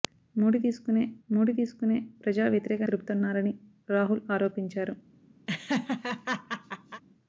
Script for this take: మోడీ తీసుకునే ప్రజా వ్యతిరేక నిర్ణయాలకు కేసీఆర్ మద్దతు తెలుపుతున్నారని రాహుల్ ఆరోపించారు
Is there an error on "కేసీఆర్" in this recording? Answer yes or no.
yes